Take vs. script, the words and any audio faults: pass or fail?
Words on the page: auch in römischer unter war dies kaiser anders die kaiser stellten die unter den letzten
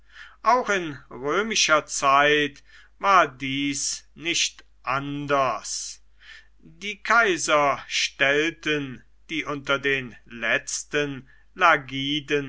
fail